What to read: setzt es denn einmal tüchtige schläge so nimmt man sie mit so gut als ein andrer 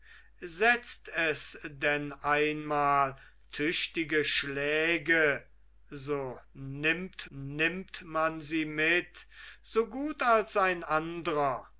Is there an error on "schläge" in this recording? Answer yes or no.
no